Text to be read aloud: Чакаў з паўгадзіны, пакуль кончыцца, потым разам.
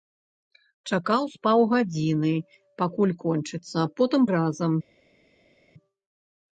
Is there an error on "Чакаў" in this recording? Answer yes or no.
no